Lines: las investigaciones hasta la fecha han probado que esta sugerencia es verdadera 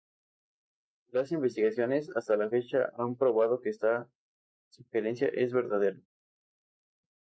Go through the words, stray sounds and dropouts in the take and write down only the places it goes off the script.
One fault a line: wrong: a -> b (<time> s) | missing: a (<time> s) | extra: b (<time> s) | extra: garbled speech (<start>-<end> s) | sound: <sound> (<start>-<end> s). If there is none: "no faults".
no faults